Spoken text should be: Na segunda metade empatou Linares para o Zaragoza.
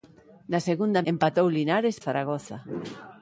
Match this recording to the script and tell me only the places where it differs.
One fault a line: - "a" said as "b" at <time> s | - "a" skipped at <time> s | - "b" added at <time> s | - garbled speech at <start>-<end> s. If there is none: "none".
- "metade" skipped at 1.1 s
- "para" skipped at 2.0 s